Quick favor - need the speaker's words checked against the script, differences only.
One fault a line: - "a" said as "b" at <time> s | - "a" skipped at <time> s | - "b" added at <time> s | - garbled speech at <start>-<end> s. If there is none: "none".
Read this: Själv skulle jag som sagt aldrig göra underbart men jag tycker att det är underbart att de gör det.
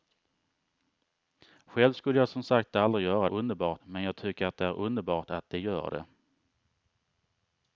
none